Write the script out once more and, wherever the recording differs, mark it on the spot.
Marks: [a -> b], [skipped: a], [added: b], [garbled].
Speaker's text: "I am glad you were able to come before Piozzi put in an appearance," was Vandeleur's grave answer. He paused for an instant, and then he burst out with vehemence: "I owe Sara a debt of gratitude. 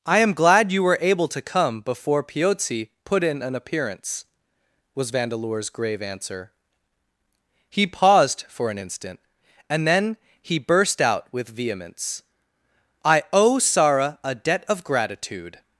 "I am glad you were able to come before Piozzi put in an appearance," was Vandeleur's grave answer. He paused for an instant, and then he burst out with vehemence: "I owe Sara a debt of gratitude.